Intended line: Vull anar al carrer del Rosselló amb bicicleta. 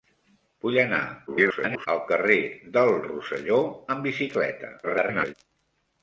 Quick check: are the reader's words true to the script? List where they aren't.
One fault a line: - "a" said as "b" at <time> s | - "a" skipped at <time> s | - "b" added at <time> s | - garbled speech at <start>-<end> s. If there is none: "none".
- garbled speech at 1.3-1.9 s
- garbled speech at 4.8-5.3 s